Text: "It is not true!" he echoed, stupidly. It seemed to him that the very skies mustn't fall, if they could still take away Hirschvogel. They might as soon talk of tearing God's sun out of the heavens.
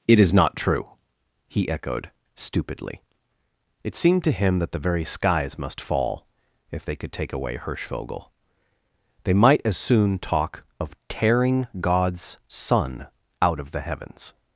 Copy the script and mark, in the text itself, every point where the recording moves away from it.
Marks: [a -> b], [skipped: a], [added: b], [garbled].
"It is not true!" he echoed, stupidly. It seemed to him that the very skies [mustn't -> must] fall, if they could [skipped: still] take away Hirschvogel. They might as soon talk of tearing God's sun out of the heavens.